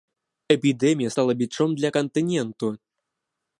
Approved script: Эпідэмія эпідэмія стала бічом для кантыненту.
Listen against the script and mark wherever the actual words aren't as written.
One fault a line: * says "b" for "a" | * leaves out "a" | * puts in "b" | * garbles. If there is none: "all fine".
* leaves out "эпідэмія"